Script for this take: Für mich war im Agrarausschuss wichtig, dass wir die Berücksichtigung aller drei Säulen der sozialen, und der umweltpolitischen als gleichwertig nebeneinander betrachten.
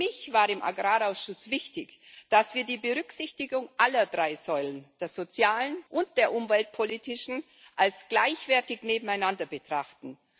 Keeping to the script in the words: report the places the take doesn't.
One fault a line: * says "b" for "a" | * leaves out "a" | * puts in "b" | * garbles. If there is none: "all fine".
all fine